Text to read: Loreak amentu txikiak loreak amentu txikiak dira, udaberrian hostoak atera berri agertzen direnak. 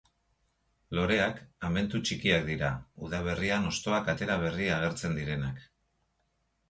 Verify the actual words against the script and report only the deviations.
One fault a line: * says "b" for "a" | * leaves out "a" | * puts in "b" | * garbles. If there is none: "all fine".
* leaves out "loreak amentu txikiak"